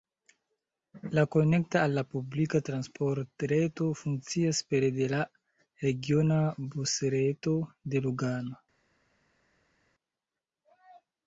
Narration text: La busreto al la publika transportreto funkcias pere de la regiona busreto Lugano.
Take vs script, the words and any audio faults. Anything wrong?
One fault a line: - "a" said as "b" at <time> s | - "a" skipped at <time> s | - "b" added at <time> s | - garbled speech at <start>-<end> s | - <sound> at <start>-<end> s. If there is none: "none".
- "busreto" said as "konekta" at 1.4 s
- "de" added at 7.9 s